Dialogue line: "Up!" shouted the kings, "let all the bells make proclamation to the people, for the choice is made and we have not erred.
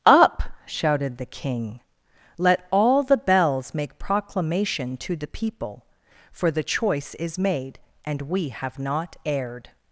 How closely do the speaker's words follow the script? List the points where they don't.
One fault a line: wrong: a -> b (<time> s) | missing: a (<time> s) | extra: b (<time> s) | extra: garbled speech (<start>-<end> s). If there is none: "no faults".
wrong: kings -> king (1.3 s)